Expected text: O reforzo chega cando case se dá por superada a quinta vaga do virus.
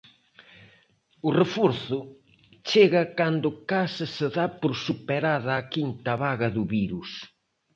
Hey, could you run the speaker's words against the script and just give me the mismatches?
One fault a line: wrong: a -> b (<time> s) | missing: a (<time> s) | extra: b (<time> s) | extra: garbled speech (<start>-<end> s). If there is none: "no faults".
no faults